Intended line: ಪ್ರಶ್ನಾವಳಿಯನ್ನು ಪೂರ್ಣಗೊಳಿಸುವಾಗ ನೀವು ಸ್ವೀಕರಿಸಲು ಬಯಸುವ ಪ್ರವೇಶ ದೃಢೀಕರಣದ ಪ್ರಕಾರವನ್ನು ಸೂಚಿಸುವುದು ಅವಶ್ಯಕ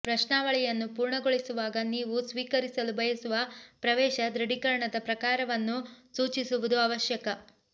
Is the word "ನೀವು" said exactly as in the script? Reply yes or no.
yes